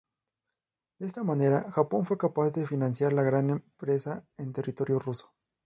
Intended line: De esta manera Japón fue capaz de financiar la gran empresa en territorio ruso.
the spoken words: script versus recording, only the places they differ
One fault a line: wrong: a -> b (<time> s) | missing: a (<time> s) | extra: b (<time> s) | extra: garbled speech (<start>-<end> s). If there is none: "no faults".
no faults